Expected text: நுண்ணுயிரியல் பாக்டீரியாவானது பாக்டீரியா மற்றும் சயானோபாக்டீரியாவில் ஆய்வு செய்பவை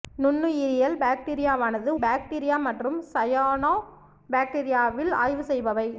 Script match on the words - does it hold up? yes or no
yes